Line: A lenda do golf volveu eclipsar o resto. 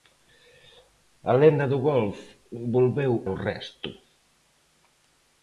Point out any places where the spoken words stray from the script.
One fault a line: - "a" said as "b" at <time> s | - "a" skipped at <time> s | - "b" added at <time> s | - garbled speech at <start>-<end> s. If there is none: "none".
- "eclipsar" skipped at 3.1 s